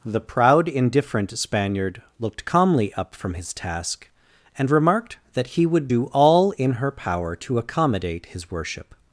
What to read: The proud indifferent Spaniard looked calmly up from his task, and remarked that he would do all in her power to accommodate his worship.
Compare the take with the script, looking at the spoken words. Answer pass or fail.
pass